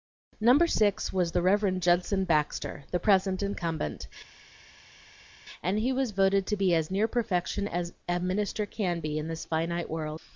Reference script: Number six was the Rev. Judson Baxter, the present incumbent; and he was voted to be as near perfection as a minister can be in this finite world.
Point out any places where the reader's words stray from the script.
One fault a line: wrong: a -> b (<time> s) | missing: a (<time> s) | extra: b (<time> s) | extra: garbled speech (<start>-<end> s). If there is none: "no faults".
no faults